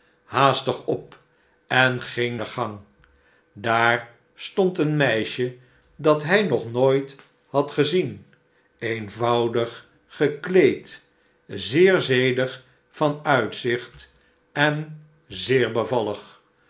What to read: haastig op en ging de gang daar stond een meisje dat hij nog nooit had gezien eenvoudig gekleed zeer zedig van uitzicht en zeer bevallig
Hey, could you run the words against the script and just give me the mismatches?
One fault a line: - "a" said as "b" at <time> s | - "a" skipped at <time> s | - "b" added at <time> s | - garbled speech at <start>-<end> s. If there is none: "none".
none